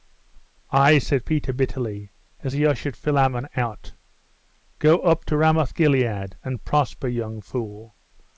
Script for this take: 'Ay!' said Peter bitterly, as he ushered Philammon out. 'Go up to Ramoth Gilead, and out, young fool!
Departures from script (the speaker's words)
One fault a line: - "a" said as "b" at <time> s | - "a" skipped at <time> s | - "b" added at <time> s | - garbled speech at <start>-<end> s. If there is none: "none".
- "out" said as "prosper" at 6.6 s